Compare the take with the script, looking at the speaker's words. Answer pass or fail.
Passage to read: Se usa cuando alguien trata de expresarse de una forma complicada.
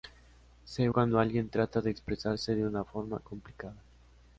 fail